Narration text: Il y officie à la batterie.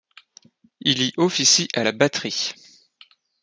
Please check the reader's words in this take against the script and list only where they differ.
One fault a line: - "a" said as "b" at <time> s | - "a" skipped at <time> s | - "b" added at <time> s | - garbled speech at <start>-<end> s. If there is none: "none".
none